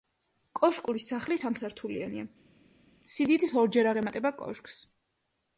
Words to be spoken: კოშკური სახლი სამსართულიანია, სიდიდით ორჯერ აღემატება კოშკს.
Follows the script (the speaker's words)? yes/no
yes